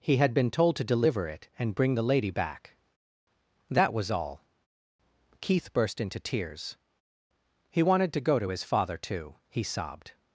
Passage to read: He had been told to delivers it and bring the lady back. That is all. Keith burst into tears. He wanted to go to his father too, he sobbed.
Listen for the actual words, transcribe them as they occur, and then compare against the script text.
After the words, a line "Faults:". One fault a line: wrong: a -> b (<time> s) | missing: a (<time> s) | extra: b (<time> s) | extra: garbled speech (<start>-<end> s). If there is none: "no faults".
He had been told to deliver it and bring the lady back. That was all. Keith burst into tears. He wanted to go to his father too, he sobbed.
Faults:
wrong: delivers -> deliver (0.8 s)
wrong: is -> was (3.9 s)